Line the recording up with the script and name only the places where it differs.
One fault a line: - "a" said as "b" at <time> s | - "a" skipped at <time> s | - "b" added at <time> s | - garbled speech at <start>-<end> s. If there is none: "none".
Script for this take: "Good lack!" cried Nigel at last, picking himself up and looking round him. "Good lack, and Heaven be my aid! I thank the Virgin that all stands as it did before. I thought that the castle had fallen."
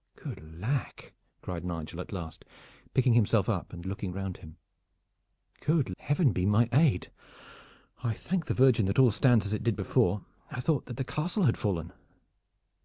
- "lack and" skipped at 5.9 s